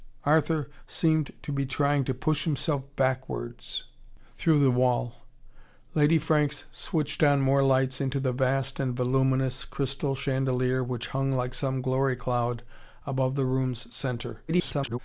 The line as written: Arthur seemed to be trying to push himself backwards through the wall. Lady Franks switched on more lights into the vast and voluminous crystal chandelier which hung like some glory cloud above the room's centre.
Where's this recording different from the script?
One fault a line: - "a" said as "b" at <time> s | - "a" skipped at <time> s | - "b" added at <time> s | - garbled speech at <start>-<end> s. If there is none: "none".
- garbled speech at 14.5-15.0 s